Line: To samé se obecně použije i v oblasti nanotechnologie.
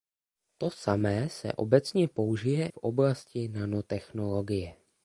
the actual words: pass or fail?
fail